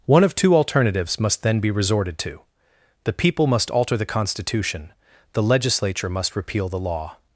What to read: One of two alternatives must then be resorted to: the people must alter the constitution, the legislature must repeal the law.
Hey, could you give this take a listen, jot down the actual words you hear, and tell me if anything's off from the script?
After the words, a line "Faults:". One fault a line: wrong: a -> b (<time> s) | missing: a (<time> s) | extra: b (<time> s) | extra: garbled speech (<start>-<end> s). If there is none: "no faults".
One of two alternatives must then be resorted to: the people must alter the constitution, the legislature must repeal the law.
Faults:
no faults